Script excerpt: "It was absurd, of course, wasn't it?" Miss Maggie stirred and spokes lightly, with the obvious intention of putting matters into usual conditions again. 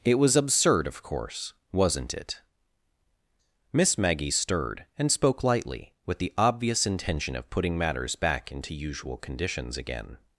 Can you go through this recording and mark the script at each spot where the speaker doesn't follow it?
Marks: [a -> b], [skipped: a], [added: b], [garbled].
"It was absurd, of course, wasn't it?" Miss Maggie stirred and [spokes -> spoke] lightly, with the obvious intention of putting matters [added: back] into usual conditions again.